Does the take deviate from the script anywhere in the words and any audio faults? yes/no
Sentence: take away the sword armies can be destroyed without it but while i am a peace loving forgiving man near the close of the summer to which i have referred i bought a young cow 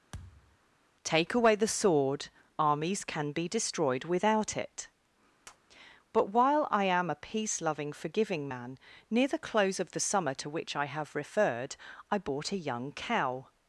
yes